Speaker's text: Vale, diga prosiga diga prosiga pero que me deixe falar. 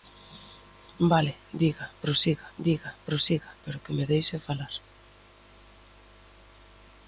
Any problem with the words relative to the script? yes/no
no